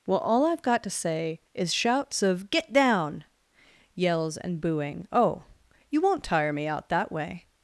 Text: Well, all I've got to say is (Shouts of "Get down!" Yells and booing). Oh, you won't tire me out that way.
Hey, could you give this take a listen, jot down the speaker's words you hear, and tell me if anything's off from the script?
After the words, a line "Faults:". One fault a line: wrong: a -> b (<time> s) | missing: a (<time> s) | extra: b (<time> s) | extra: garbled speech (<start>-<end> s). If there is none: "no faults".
Well, all I've got to say is (Shouts of "Get down!" Yells and booing). Oh, you won't tire me out that way.
Faults:
no faults